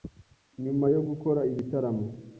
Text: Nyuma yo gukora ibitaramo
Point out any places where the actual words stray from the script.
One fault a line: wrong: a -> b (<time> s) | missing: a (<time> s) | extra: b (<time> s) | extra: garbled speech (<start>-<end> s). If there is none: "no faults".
no faults